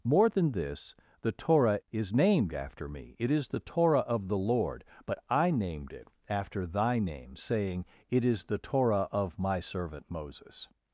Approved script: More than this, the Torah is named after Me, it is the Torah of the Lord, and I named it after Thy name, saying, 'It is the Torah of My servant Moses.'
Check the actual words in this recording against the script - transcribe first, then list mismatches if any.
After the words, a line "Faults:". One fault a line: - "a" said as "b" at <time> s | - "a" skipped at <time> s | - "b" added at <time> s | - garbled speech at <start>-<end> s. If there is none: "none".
More than this, the Torah is named after Me, it is the Torah of the Lord, but I named it after Thy name, saying, 'It is the Torah of My servant Moses.'
Faults:
- "and" said as "but" at 5.0 s